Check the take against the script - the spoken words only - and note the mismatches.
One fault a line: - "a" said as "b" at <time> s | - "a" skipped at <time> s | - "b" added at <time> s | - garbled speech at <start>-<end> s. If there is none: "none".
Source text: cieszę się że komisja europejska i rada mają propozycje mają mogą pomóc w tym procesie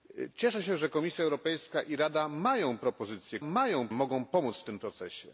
none